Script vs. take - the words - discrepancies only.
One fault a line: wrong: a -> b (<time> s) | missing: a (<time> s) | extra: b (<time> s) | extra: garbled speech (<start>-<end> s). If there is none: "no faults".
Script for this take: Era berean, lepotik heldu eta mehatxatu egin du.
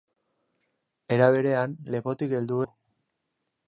missing: eta mehatxatu egin (2.6 s)